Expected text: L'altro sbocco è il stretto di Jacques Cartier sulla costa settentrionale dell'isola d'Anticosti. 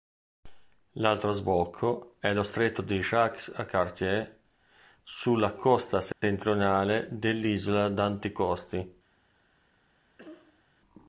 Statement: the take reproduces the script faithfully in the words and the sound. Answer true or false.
false